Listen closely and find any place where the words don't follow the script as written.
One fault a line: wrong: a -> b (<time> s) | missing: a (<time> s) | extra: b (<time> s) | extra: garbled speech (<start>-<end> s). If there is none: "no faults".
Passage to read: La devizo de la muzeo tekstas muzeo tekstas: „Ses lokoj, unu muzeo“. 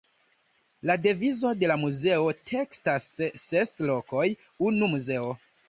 missing: muzeo tekstas (3.1 s)